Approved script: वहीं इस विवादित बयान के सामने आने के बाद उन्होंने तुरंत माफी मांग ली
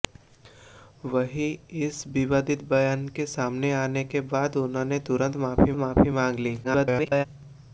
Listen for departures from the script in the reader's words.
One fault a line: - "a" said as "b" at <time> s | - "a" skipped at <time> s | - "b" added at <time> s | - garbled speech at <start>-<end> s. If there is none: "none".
- "माफी" added at 5.8 s
- garbled speech at 6.6-7.3 s